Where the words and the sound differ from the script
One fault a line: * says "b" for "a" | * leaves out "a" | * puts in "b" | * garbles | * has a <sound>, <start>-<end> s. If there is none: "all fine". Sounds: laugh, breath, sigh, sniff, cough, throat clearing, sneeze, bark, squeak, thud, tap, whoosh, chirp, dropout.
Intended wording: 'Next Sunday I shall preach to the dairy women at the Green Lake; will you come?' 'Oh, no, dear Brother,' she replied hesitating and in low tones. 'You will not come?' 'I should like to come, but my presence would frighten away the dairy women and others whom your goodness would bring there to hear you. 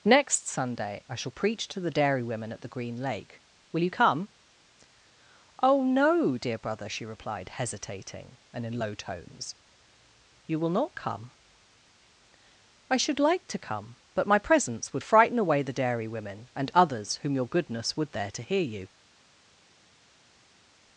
* leaves out "bring"